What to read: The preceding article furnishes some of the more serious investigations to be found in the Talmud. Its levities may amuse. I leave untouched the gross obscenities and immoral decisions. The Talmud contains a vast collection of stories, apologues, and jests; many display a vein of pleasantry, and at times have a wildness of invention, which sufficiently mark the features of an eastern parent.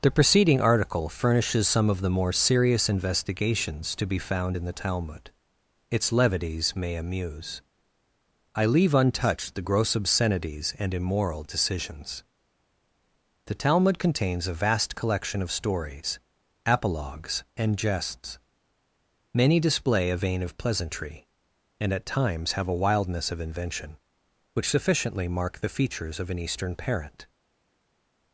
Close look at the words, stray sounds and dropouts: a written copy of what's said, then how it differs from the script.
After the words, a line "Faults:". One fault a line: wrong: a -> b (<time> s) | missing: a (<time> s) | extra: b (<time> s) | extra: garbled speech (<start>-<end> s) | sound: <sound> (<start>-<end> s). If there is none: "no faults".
The preceding article furnishes some of the more serious investigations to be found in the Talmud. Its levities may amuse. I leave untouched the gross obscenities and immoral decisions. The Talmud contains a vast collection of stories, apologues, and jests; many display a vein of pleasantry, and at times have a wildness of invention, which sufficiently mark the features of an eastern parent.
Faults:
no faults